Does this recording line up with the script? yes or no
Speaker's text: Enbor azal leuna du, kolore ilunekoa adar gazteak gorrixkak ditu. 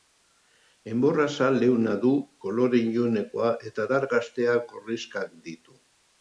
no